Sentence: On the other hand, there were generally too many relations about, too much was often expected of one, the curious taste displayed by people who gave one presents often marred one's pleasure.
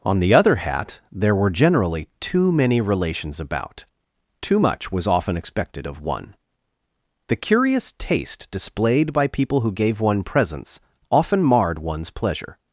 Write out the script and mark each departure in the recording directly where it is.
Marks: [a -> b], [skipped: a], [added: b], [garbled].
On the other [hand, -> hat] there were generally too many relations about, too much was often expected of one, the curious taste displayed by people who gave one presents often marred one's pleasure.